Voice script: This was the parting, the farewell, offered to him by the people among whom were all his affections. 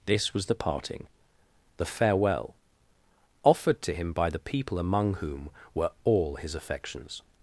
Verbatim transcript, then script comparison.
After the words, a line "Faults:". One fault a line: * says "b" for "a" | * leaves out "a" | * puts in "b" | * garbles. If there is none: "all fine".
This was the parting, the farewell, offered to him by the people among whom were all his affections.
Faults:
all fine